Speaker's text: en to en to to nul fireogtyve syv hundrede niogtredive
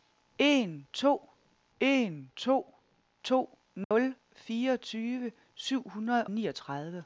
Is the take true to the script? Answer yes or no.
yes